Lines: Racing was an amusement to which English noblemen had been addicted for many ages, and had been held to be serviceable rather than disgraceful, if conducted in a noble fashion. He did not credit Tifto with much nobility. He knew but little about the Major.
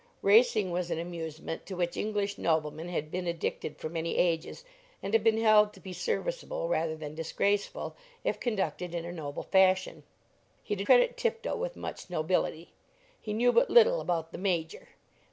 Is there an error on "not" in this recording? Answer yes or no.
yes